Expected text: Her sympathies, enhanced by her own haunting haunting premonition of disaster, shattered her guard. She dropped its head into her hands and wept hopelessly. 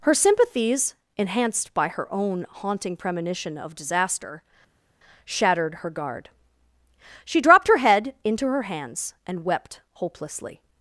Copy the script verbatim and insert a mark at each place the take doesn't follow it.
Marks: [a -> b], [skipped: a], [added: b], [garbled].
Her sympathies, enhanced by her own haunting [skipped: haunting] premonition of disaster, shattered her guard. She dropped [its -> her] head into her hands and wept hopelessly.